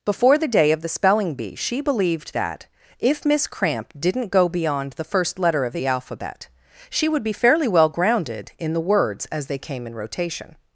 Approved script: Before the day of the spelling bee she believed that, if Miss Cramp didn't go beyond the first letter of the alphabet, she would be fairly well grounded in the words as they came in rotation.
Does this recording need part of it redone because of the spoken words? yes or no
no